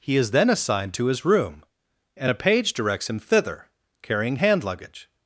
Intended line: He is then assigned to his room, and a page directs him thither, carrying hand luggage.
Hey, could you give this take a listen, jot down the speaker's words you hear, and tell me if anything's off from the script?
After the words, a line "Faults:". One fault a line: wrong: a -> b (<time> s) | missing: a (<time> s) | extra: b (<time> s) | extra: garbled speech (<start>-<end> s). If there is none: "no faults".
He is then assigned to his room, and a page directs him thither, carrying hand luggage.
Faults:
no faults